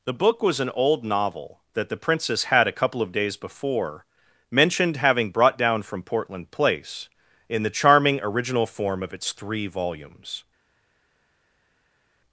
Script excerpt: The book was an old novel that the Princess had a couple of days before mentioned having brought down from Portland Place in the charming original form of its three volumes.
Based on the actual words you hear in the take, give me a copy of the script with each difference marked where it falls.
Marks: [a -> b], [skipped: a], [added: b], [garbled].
The book was an old novel that the Princess had a couple of days before mentioned having brought down from Portland Place in the charming original form of its three volumes.